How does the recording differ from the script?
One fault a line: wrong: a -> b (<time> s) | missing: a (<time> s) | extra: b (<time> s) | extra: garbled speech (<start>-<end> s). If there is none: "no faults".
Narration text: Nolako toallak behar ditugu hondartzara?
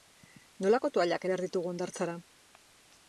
no faults